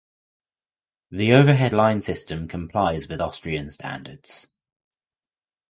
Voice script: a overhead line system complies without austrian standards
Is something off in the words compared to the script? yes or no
yes